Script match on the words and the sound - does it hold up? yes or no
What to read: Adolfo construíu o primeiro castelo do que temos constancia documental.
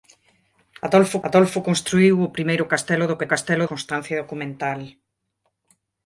no